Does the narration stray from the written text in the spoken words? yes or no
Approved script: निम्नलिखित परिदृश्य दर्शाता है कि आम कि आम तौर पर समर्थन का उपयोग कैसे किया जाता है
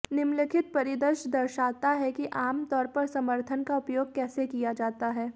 yes